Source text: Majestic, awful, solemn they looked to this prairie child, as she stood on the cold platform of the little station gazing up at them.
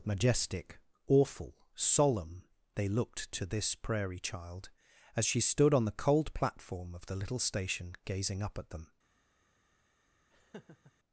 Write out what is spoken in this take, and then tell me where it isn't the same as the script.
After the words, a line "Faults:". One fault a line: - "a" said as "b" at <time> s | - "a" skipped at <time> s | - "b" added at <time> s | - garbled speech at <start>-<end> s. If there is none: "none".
Majestic, awful, solemn they looked to this prairie child, as she stood on the cold platform of the little station gazing up at them.
Faults:
none